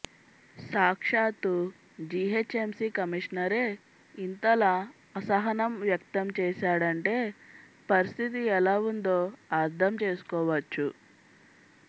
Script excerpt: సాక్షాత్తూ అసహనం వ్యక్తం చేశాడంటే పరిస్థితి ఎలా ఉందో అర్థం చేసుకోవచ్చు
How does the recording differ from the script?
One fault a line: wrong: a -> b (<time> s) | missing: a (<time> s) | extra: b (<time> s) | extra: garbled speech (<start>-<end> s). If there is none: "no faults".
extra: జీహెచ్ఎంసీ కమిషనరే ఇంతలా (2.1 s)